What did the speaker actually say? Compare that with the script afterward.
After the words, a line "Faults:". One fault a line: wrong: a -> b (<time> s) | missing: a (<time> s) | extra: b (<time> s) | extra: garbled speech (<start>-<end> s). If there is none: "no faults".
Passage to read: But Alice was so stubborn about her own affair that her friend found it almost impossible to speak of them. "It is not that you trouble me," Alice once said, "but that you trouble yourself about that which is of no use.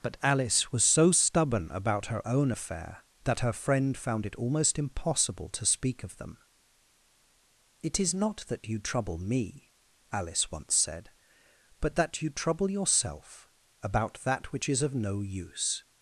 But Alice was so stubborn about her own affair that her friend found it almost impossible to speak of them. "It is not that you trouble me," Alice once said, "but that you trouble yourself about that which is of no use.
Faults:
no faults